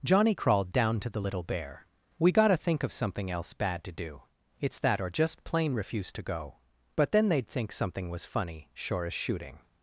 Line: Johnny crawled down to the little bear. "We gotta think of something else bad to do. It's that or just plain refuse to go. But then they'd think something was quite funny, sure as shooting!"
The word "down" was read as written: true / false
true